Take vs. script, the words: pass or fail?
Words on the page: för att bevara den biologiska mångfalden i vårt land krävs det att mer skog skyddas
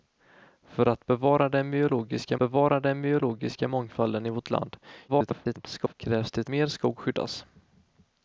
fail